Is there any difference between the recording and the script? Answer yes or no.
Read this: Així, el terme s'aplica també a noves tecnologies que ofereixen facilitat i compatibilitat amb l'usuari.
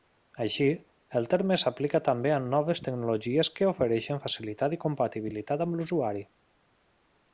no